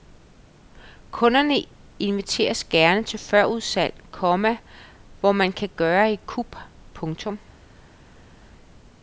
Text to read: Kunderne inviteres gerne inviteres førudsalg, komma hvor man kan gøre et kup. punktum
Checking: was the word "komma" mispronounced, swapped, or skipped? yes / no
no